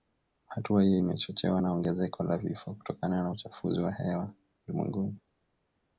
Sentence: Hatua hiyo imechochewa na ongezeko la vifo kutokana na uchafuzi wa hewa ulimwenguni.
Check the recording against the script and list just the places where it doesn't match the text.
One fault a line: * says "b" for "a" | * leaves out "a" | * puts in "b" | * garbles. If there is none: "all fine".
all fine